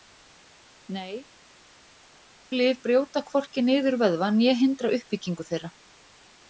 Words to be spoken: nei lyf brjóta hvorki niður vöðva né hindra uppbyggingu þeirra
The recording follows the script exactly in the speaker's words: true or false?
true